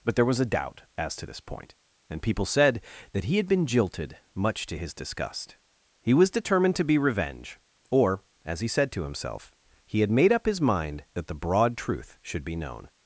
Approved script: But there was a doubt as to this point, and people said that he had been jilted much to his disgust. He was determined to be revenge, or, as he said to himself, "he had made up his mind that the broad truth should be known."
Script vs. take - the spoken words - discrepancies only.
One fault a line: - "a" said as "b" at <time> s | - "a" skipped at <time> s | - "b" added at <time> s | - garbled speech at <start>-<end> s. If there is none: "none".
none